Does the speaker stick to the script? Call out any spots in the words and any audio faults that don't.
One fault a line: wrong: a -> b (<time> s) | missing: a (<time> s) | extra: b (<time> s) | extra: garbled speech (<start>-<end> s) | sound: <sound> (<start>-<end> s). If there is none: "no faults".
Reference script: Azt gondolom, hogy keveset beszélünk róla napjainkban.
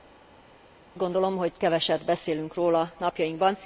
no faults